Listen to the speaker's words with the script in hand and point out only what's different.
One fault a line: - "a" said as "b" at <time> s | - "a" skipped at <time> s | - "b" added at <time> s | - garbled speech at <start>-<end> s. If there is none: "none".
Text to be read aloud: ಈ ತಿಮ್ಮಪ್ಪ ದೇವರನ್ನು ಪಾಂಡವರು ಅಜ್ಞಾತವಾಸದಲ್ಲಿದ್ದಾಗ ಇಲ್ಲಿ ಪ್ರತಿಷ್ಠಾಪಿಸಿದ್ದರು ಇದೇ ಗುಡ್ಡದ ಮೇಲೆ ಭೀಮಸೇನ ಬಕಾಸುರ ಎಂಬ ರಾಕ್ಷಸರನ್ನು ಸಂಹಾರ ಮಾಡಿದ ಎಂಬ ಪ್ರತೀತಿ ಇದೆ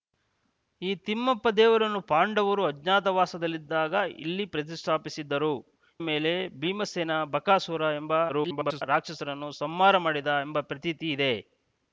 - "ಇದೇ ಗುಡ್ಡದ" skipped at 5.5 s
- garbled speech at 8.3-8.8 s